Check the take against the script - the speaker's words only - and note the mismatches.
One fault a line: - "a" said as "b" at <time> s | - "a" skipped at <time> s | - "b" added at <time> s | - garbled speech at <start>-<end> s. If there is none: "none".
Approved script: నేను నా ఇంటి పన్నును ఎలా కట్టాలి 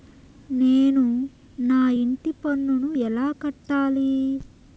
none